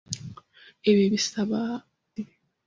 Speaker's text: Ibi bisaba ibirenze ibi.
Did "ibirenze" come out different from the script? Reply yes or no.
yes